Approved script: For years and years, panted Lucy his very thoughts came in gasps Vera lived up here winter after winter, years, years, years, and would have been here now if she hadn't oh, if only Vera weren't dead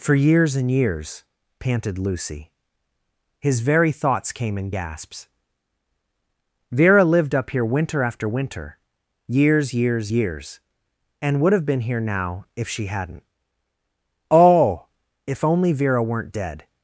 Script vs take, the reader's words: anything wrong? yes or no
no